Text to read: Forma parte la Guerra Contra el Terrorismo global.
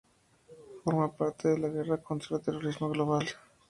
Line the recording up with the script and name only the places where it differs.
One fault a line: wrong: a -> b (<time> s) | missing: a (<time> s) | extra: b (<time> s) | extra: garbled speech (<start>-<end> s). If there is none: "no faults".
extra: de (1.5 s)